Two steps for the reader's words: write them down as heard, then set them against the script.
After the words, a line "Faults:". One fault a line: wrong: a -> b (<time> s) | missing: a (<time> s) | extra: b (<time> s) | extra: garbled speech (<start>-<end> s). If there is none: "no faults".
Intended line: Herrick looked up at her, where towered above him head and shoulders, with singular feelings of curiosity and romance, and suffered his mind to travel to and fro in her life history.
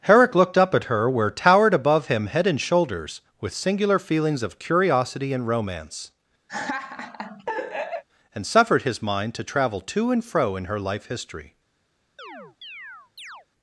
Herrick looked up at her, where towered above him head and shoulders, with singular feelings of curiosity and romance, and suffered his mind to travel to and fro in her life history.
Faults:
no faults